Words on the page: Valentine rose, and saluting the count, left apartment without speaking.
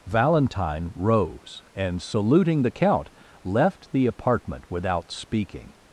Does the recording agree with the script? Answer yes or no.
no